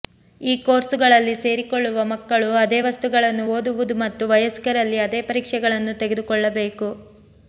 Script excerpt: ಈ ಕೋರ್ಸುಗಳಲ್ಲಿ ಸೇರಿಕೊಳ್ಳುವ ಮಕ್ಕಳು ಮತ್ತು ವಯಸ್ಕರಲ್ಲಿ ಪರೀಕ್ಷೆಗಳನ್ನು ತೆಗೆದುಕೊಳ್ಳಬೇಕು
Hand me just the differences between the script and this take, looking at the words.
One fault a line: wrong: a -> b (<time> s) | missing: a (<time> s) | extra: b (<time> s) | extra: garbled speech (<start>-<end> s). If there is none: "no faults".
extra: ಅದೇ ವಸ್ತುಗಳನ್ನು ಓದುವುದು (2.6 s)
extra: ಅದೇ (5.1 s)